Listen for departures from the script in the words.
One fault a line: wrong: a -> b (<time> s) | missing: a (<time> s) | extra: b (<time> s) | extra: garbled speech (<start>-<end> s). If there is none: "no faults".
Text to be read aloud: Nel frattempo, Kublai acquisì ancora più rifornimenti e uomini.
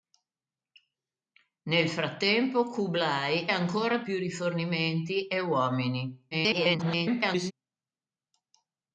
missing: acquisì (3.5 s)
extra: garbled speech (6.3-7.5 s)